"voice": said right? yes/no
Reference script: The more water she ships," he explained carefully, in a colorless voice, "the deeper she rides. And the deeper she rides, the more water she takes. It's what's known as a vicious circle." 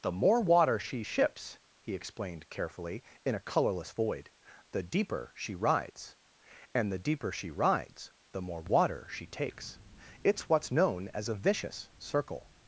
no